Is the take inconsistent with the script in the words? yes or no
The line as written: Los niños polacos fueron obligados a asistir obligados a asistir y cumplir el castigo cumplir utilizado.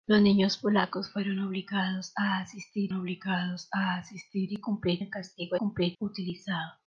no